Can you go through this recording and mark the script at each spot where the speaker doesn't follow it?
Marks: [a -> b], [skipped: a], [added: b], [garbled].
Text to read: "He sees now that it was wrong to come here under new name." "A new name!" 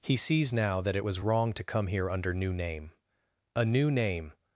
"He sees now that it was wrong to come here under new name." "A new name!"